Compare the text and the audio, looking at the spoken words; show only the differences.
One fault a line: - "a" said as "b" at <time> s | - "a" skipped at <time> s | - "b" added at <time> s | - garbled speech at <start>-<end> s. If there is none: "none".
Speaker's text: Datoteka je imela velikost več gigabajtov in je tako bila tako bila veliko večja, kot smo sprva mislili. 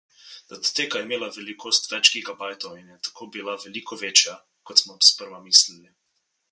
- "tako bila" skipped at 3.6 s